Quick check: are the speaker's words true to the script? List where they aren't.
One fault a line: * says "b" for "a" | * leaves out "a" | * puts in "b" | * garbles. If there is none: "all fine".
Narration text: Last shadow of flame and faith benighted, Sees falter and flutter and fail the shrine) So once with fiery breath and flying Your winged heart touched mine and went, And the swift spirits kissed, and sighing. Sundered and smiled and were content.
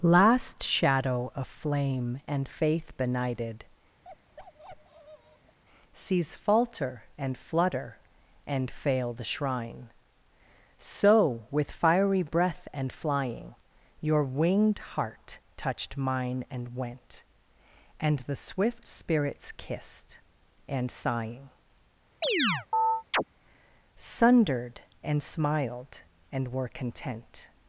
* leaves out "once"